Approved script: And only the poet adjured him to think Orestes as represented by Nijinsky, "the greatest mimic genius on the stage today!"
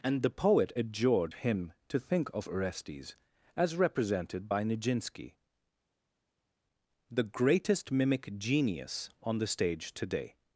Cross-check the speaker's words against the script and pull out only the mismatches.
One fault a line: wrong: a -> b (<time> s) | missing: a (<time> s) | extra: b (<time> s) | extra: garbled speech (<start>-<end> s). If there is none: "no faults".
missing: only (0.2 s)
extra: of (2.3 s)